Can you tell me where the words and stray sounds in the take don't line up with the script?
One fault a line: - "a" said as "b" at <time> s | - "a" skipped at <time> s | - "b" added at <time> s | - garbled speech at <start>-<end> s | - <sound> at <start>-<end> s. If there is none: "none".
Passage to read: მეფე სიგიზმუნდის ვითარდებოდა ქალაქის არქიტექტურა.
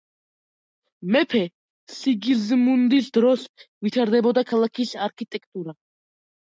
- "დროს" added at 3.2 s